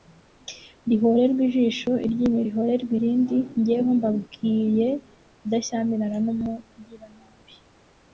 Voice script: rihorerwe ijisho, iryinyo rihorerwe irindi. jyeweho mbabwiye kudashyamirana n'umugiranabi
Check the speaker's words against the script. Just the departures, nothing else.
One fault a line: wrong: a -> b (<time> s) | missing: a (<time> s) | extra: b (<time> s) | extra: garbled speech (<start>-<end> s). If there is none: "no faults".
no faults